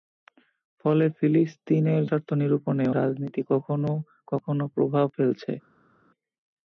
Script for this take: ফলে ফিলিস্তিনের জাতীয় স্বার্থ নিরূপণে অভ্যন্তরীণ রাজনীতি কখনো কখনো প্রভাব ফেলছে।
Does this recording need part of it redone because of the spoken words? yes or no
yes